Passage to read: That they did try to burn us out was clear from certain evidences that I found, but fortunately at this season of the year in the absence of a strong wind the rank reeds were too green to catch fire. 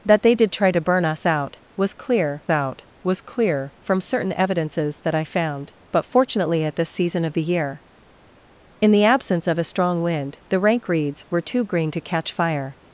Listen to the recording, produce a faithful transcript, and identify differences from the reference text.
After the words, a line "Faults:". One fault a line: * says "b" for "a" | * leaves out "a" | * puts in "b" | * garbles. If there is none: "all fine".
That they did try to burn us out was clear out was clear from certain evidences that I found, but fortunately at this season of the year in the absence of a strong wind the rank reeds were too green to catch fire.
Faults:
* puts in "out was clear"